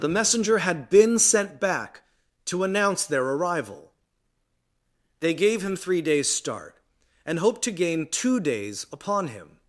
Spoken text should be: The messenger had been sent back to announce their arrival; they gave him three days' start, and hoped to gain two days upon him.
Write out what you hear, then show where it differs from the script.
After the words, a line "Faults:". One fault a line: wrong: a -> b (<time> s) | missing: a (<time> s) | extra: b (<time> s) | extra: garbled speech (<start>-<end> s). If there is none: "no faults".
The messenger had been sent back to announce their arrival; they gave him three days' start, and hoped to gain two days upon him.
Faults:
no faults